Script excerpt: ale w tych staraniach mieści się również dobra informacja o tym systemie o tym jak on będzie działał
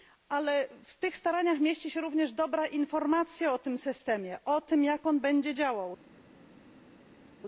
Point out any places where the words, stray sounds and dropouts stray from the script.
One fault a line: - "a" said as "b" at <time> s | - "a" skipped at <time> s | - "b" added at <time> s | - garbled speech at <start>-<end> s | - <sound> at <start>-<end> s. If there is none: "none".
none